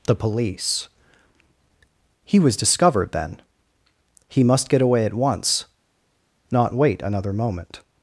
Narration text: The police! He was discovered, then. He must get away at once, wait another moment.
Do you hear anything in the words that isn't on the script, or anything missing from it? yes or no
yes